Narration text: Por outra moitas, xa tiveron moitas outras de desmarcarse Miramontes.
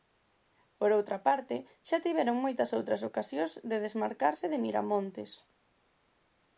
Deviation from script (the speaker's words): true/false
true